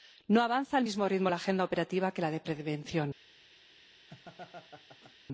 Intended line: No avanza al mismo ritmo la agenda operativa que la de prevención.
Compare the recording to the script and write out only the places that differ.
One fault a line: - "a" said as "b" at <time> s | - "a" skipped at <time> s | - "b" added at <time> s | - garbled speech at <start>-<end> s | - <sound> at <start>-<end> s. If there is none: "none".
- laugh at 4.1-5.2 s